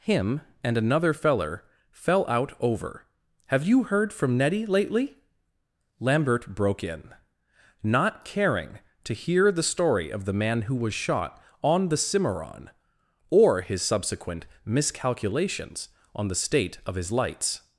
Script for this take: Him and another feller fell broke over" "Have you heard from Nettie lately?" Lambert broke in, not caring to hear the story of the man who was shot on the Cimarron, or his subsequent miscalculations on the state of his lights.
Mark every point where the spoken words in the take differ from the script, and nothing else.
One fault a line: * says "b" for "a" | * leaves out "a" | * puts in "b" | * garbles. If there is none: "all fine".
* says "out" for "broke"